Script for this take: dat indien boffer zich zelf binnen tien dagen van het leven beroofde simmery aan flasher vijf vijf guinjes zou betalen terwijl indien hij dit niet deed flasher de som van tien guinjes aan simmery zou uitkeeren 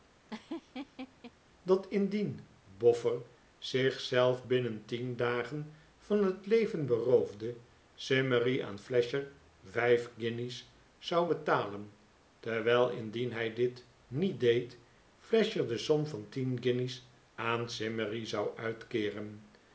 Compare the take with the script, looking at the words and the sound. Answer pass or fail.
fail